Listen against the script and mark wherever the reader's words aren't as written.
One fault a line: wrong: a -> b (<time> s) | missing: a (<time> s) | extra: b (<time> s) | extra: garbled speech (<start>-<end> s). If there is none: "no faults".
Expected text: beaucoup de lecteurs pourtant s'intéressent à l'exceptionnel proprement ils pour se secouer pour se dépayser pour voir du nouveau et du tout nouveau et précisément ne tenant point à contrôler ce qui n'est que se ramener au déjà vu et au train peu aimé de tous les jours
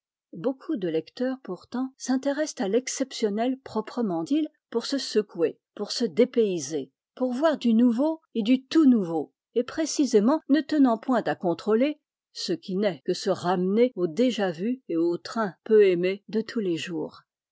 no faults